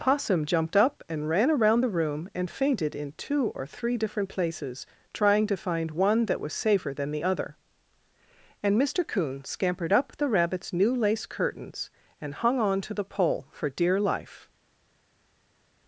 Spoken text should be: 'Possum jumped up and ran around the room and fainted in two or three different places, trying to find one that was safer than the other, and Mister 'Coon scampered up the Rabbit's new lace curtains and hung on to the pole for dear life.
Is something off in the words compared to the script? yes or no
no